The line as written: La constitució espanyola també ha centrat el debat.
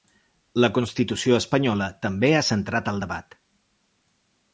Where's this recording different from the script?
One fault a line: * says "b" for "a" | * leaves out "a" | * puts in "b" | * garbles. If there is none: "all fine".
all fine